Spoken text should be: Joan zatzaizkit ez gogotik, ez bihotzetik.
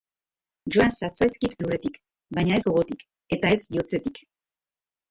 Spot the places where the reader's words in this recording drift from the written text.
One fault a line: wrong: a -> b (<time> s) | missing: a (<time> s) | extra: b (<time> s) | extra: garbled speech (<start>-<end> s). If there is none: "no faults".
extra: lurretik baina (1.6 s)
extra: eta (3.4 s)